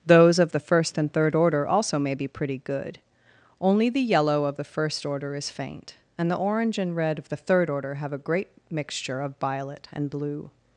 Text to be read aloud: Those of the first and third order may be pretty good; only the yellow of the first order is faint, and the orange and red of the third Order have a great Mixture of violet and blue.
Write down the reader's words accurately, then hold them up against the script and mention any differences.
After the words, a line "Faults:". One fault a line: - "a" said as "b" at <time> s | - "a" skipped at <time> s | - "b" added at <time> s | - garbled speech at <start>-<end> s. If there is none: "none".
Those of the first and third order also may be pretty good; only the yellow of the first order is faint, and the orange and red of the third Order have a great Mixture of violet and blue.
Faults:
- "also" added at 1.7 s